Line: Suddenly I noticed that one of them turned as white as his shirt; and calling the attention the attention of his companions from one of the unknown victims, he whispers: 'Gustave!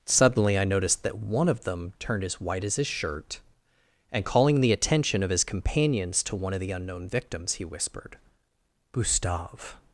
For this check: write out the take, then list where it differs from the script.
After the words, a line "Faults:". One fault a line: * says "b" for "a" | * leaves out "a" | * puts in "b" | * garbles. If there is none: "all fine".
Suddenly I noticed that one of them turned as white as his shirt; and calling the attention of his companions to one of the unknown victims, he whispered: 'Gustave!
Faults:
* leaves out "the attention"
* says "to" for "from"
* says "whispered" for "whispers"